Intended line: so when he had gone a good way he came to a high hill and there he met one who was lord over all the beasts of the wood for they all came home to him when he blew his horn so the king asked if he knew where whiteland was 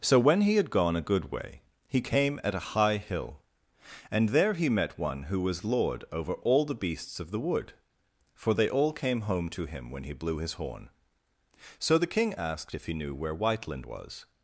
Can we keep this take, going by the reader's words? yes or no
no